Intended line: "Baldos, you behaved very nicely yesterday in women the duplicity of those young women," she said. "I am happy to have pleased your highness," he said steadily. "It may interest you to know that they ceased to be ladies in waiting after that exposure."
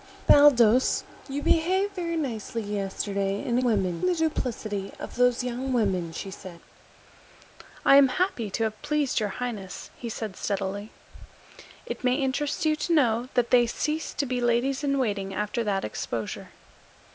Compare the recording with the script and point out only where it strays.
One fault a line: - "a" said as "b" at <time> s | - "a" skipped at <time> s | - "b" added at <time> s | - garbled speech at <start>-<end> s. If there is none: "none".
none